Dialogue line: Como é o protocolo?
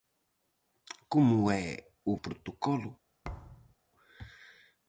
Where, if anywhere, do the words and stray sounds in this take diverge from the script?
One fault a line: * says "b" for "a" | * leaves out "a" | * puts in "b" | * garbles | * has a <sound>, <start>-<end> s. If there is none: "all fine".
* has a thud, 3.2-3.7 s